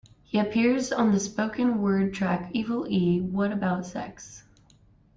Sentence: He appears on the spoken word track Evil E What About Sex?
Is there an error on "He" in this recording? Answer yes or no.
no